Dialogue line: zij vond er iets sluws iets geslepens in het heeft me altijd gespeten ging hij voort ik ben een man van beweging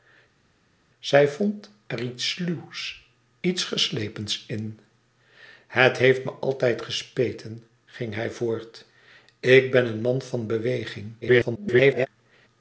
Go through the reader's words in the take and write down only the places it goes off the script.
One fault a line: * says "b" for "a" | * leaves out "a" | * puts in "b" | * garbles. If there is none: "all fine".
* garbles